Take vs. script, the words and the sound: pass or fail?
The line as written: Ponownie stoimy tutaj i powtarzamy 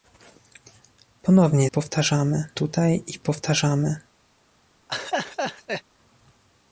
fail